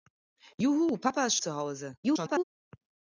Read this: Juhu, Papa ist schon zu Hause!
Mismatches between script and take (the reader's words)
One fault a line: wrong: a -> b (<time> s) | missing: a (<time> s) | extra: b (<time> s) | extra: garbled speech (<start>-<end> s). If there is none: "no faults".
missing: schon (1.4 s)
extra: garbled speech (2.0-2.4 s)